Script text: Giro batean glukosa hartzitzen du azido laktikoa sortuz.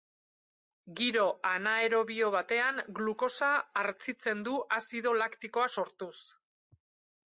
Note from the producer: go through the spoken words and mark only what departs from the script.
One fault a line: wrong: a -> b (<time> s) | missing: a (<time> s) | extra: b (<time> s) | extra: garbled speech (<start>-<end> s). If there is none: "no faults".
extra: anaerobio (1.5 s)